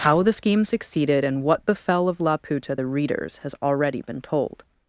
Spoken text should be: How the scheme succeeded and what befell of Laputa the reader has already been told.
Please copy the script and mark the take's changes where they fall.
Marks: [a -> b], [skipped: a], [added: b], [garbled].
How the scheme succeeded and what befell of Laputa the [reader -> readers] has already been told.